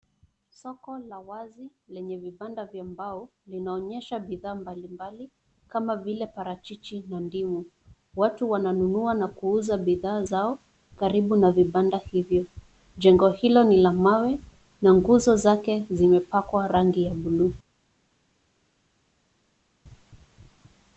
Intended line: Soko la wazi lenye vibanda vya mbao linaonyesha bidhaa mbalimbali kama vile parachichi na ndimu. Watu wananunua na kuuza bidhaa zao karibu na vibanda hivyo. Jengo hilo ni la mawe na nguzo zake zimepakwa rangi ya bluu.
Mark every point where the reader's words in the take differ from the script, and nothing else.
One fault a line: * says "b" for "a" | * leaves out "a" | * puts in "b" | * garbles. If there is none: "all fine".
all fine